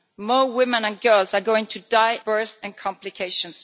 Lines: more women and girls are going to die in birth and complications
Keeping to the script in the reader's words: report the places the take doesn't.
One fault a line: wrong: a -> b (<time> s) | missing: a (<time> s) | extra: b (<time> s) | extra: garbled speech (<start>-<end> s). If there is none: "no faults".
missing: in (2.2 s)